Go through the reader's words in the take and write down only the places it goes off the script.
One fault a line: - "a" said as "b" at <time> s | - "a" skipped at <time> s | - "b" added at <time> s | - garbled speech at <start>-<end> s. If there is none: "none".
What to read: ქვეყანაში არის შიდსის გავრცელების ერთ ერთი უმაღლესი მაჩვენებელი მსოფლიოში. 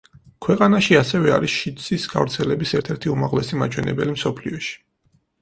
- "ასევე" added at 1.0 s